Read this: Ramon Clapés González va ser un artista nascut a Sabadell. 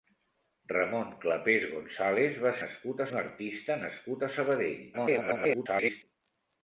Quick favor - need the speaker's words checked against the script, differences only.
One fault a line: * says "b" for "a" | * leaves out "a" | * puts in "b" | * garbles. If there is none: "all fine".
* says "nascut" for "ser"
* garbles